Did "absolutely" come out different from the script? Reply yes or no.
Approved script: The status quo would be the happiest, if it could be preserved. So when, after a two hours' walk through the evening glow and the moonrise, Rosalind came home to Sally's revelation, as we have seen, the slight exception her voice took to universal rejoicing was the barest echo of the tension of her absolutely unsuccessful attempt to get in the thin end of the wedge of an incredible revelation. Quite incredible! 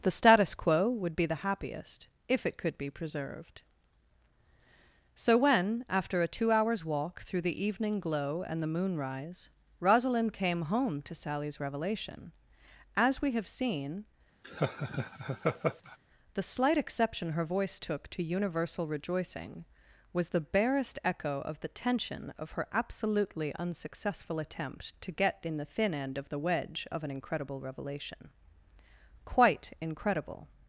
no